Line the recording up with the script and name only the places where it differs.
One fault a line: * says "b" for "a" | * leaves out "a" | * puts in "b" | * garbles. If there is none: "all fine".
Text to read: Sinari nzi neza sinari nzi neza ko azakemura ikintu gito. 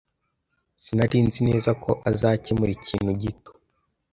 * leaves out "sinari nzi neza"